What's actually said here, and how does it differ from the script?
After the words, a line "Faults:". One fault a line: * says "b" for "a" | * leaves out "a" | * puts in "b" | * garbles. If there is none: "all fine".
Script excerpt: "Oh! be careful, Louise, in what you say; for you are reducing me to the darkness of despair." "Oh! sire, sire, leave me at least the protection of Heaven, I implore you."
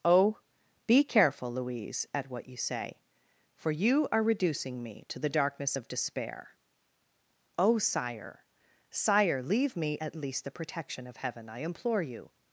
"Oh! be careful, Louise, at what you say; for you are reducing me to the darkness of despair." "Oh! sire, sire, leave me at least the protection of Heaven, I implore you."
Faults:
* says "at" for "in"